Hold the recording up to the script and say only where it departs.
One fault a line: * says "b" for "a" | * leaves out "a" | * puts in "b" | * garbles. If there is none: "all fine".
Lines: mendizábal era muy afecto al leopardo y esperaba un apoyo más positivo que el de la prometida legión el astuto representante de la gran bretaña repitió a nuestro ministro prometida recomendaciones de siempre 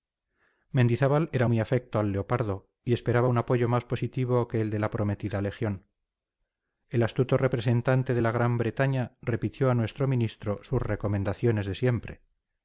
* says "sus" for "prometida"